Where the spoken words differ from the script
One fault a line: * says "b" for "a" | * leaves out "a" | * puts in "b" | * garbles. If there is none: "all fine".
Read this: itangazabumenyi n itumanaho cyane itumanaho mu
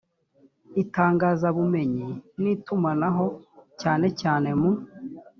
* says "cyane" for "itumanaho"